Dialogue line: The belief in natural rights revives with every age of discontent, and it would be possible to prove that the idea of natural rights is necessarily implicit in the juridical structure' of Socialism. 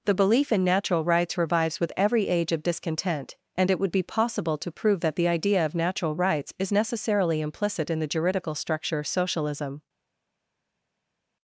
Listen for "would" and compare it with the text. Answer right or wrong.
right